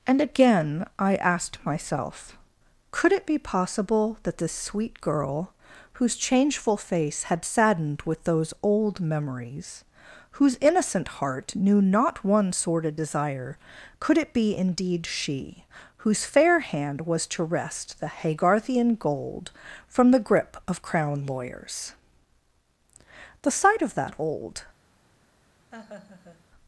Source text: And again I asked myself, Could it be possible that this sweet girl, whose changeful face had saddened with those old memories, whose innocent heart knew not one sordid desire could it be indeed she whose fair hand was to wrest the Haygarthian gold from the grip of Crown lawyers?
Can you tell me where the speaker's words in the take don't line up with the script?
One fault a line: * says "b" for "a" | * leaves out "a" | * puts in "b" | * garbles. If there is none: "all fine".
* puts in "The sight of that old"